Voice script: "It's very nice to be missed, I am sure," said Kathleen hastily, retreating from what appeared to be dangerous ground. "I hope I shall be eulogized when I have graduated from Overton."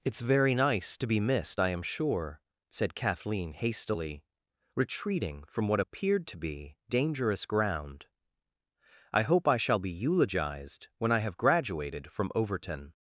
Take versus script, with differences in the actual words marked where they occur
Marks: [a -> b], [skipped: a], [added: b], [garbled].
"It's very nice to be missed, I am sure," said Kathleen hastily, retreating from what appeared to be dangerous ground. "I hope I shall be eulogized when I have graduated from Overton."